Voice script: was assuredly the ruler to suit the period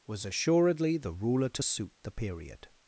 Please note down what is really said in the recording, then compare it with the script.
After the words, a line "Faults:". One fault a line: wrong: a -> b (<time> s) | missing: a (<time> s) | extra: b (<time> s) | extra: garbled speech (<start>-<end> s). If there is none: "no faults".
was assuredly the ruler to suit the period
Faults:
no faults